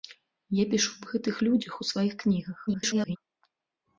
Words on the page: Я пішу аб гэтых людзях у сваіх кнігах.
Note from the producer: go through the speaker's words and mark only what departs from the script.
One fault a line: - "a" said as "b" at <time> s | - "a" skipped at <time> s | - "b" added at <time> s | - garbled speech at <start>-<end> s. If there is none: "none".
- garbled speech at 2.7-3.2 s